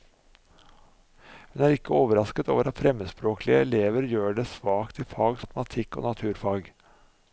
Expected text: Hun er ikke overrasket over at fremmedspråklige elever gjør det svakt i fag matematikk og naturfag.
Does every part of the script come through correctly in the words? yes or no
yes